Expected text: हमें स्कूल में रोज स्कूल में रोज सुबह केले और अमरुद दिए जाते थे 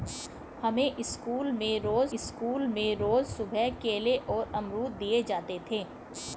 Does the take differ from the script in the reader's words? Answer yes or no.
no